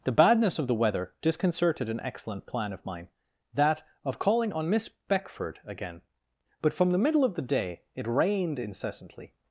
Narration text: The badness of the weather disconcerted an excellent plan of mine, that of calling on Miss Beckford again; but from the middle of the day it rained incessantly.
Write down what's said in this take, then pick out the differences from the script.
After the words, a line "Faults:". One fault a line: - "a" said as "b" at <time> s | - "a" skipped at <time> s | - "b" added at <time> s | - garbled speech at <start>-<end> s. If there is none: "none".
The badness of the weather disconcerted an excellent plan of mine, that of calling on Miss Beckford again; but from the middle of the day it rained incessantly.
Faults:
none